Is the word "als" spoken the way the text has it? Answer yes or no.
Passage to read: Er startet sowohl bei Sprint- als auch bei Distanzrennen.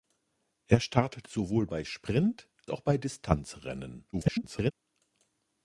no